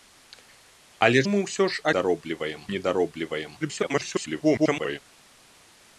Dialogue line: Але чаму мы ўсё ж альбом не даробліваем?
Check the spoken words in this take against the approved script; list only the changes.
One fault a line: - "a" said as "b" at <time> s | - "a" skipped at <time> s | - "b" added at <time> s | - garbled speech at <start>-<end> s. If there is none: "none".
- "чаму" skipped at 1.2 s
- "альбом" said as "даробліваем" at 2.0 s
- garbled speech at 3.6-5.0 s